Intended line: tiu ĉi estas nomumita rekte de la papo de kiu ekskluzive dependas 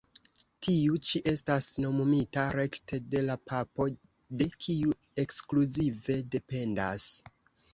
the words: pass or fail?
pass